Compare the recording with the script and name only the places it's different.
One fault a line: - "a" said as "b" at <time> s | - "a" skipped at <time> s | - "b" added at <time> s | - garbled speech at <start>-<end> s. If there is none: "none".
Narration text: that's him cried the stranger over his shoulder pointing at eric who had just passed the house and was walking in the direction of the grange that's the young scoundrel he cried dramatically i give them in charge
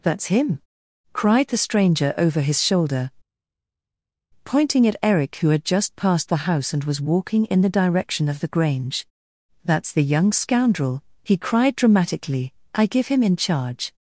- "them" said as "him" at 13.1 s